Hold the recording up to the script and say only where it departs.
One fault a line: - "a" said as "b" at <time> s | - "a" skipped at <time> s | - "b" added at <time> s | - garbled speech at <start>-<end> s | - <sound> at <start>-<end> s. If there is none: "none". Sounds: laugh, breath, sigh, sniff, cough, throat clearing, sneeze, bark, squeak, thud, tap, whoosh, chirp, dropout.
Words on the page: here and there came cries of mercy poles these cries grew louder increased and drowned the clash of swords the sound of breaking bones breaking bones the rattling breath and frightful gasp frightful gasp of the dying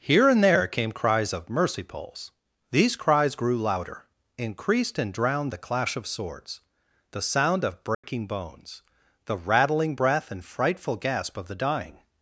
- dropout at 7.9-8.0 s
- "breaking bones" skipped at 8.8 s
- "frightful gasp" skipped at 11.4 s